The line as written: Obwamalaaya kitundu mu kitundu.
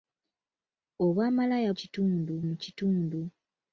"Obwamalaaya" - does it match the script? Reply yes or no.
yes